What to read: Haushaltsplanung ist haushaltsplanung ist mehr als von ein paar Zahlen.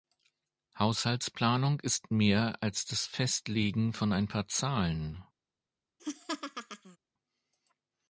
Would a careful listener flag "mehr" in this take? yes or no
yes